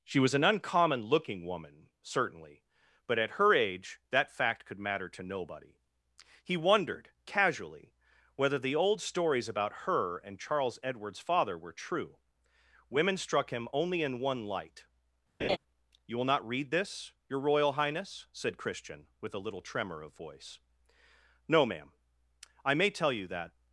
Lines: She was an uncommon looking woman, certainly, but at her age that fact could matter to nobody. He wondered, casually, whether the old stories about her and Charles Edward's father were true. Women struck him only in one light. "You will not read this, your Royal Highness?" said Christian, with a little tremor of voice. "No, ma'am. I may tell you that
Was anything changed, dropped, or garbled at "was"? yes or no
no